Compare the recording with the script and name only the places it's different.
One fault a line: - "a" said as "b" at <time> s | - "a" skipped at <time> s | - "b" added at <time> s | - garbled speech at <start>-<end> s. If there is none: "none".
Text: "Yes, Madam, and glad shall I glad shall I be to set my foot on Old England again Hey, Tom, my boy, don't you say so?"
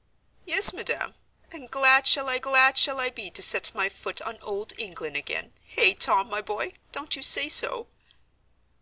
none